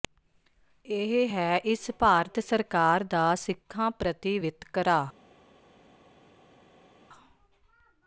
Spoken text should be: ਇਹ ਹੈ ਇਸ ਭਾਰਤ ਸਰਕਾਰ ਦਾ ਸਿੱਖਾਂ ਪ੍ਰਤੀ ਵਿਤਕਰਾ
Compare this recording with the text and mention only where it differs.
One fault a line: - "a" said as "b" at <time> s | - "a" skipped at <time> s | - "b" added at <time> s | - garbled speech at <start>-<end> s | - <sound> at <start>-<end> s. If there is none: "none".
none